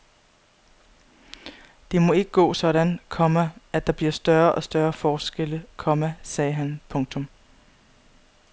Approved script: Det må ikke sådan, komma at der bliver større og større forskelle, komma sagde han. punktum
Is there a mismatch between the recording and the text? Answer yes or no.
yes